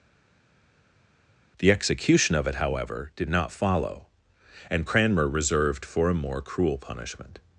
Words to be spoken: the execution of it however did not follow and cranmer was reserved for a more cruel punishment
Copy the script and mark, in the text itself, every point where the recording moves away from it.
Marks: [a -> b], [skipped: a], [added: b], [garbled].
the execution of it however did not follow and cranmer [skipped: was] reserved for a more cruel punishment